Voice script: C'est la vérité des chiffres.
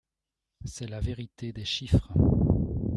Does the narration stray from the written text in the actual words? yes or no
no